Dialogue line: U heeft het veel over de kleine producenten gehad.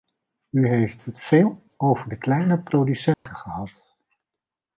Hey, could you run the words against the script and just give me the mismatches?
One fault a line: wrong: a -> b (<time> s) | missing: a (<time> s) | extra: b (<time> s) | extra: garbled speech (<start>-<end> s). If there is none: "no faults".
no faults